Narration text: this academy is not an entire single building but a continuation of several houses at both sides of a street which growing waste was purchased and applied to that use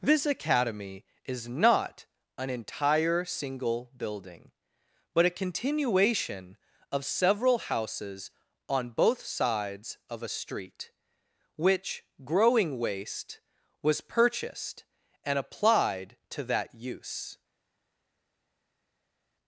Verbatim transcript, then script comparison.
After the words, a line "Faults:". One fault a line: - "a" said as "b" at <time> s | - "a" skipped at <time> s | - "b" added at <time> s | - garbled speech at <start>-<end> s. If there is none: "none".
this academy is not an entire single building but a continuation of several houses on both sides of a street which growing waste was purchased and applied to that use
Faults:
- "at" said as "on" at 8.7 s